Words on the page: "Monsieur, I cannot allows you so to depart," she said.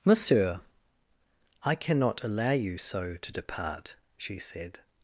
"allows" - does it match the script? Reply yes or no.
no